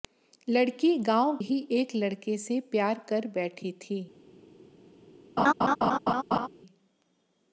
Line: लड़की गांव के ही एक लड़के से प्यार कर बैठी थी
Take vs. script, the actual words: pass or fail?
fail